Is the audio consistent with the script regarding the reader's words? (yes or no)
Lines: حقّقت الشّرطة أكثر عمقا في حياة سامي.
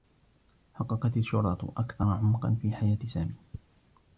yes